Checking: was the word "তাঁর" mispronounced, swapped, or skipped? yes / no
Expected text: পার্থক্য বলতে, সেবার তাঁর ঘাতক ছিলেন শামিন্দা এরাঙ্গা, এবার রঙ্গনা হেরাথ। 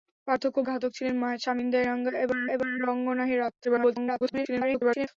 yes